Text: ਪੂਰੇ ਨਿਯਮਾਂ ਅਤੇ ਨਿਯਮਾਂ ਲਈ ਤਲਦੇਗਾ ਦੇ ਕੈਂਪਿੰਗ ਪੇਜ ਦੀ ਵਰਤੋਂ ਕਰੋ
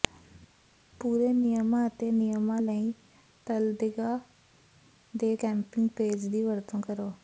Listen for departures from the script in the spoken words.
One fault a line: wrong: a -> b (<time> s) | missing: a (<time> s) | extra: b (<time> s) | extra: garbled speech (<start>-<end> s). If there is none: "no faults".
no faults